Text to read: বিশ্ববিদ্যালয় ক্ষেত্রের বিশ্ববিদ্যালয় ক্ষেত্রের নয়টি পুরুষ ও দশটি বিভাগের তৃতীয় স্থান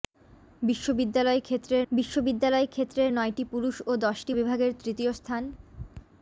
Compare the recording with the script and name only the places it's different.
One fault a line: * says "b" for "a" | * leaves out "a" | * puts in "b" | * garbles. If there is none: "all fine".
all fine